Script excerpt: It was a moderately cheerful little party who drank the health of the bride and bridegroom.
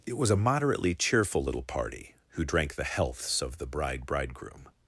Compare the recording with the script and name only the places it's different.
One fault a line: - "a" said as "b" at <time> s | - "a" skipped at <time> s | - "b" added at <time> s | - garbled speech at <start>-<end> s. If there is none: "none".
- "health" said as "healths" at 2.8 s
- "and" skipped at 4.1 s